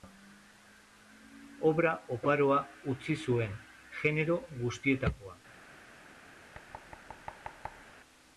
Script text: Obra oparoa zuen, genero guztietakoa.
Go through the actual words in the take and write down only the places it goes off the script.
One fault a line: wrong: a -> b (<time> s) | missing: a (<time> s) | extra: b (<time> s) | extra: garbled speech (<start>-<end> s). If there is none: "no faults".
extra: utzi (3.0 s)